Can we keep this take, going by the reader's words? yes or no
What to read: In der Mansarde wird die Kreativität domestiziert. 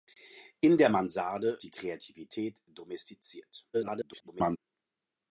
no